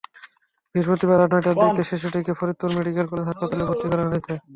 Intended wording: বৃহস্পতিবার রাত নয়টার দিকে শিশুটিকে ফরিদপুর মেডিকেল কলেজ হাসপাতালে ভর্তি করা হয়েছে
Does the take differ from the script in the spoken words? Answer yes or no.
no